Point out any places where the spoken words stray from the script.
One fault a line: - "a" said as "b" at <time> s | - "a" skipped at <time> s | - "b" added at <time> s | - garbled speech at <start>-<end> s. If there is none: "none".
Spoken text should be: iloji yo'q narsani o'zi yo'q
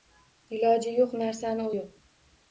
- "o'zi" skipped at 1.7 s